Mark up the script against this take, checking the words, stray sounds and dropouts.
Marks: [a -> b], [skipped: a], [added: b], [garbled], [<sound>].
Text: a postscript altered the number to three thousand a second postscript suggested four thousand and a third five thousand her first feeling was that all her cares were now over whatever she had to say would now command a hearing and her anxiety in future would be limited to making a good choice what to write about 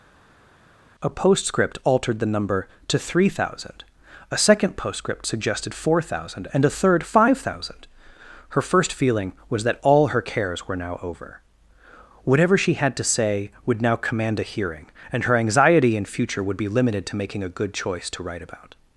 a postscript altered the number to three thousand a second postscript suggested four thousand and a third five thousand her first feeling was that all her cares were now over whatever she had to say would now command a hearing and her anxiety in future would be limited to making a good choice [skipped: what] to write about